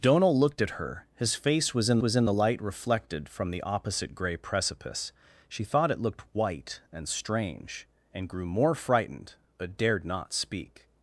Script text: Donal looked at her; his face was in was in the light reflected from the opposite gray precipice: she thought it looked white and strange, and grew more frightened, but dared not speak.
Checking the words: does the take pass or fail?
pass